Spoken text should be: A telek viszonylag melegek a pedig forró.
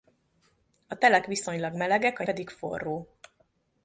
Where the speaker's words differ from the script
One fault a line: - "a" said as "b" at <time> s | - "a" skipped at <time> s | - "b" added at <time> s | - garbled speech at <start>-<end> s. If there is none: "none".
none